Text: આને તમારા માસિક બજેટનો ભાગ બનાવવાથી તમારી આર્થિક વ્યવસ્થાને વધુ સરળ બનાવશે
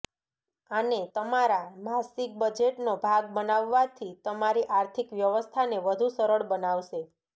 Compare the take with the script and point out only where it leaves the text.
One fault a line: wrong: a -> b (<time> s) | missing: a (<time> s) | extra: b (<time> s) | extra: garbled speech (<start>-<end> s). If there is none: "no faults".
no faults